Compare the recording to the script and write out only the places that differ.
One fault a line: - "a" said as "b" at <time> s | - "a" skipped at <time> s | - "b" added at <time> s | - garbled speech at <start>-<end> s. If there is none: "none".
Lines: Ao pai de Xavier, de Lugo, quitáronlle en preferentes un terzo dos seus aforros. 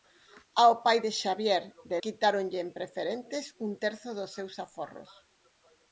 - "Lugo" skipped at 2.0 s